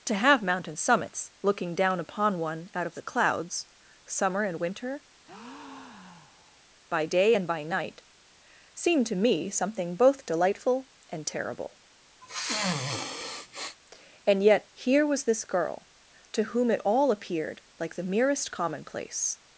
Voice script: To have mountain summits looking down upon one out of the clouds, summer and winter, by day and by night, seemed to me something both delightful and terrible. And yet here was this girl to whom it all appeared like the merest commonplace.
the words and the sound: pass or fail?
fail